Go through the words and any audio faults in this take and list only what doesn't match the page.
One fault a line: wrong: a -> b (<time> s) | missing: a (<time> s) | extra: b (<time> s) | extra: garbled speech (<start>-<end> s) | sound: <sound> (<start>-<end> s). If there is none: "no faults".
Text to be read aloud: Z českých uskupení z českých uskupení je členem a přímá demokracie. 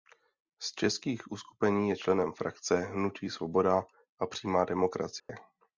wrong: z českých uskupení je členem -> je členem frakce hnutí Svoboda (1.9 s)
sound: dropout (5.2-5.3 s)